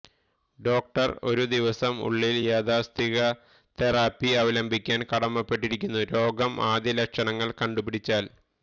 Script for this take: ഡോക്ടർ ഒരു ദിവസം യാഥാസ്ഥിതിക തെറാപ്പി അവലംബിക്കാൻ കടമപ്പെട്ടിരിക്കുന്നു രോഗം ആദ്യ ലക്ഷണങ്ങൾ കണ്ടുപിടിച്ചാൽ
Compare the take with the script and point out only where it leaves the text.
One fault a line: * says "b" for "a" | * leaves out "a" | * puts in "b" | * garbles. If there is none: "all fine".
* puts in "ഉള്ളിൽ"